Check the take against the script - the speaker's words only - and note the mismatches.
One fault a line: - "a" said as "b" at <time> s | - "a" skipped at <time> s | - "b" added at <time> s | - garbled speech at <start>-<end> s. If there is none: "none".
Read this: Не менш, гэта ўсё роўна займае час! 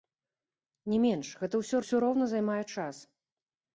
- "ўсё" added at 1.8 s